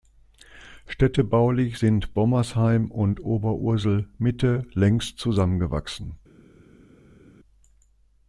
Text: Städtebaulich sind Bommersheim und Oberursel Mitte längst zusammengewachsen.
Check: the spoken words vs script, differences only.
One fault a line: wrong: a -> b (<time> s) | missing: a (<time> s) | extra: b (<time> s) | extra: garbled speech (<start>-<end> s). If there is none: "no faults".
no faults